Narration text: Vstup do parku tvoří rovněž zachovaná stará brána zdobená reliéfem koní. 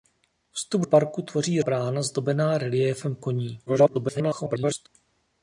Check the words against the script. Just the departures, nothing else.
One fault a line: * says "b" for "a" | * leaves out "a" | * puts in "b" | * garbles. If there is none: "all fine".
* leaves out "do"
* leaves out "rovněž zachovaná stará"
* garbles